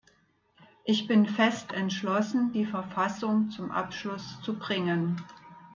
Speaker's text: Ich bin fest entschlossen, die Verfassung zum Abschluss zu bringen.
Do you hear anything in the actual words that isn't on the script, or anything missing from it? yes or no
no